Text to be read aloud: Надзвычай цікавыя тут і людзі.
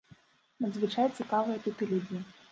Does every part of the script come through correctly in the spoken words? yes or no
yes